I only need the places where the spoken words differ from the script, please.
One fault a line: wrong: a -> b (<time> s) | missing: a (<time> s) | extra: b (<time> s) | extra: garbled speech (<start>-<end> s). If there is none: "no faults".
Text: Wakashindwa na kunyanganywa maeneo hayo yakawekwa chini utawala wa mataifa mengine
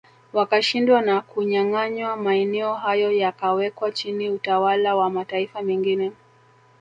no faults